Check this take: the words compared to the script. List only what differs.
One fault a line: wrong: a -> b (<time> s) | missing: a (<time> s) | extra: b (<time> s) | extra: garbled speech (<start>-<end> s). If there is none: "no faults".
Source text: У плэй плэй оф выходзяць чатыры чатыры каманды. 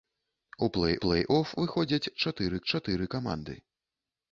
no faults